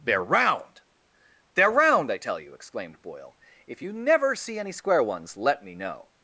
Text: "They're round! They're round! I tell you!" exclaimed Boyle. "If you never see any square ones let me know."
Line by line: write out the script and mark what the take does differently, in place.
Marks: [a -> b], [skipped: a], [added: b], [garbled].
"They're round! They're round! I tell you!" exclaimed Boyle. "If you never see any square ones let me know."